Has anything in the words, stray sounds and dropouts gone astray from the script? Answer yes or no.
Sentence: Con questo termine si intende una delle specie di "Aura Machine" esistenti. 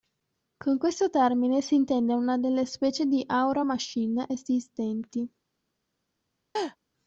yes